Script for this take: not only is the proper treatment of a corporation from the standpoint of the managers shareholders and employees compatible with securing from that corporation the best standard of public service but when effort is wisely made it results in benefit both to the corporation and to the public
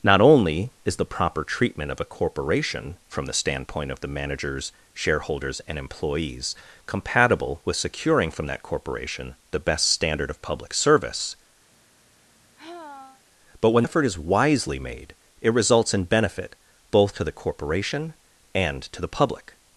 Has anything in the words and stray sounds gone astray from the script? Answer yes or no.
yes